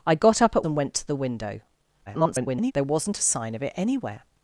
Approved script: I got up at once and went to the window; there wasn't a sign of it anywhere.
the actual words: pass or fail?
fail